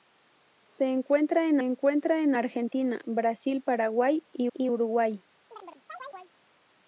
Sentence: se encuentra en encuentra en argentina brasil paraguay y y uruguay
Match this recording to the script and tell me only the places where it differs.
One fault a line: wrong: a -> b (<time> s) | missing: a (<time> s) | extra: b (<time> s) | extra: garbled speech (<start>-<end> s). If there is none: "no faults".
no faults